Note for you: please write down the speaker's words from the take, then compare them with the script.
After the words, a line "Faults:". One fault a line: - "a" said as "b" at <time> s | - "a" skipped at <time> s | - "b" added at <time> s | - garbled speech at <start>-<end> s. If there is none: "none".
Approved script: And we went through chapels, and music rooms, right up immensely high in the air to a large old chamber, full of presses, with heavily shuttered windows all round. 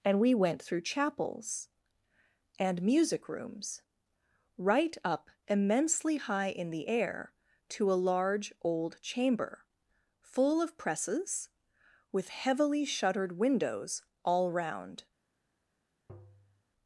And we went through chapels, and music rooms, right up immensely high in the air to a large old chamber, full of presses, with heavily shuttered windows all round.
Faults:
none